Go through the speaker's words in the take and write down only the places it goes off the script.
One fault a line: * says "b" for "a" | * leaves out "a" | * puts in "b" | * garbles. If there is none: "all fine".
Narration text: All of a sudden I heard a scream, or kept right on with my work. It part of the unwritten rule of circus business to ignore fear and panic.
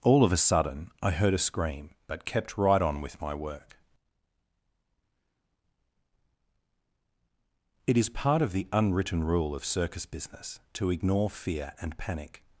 * says "but" for "or"
* puts in "is"